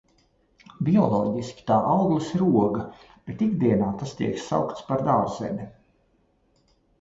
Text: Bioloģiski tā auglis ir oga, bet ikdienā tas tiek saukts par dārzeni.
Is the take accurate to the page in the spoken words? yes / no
yes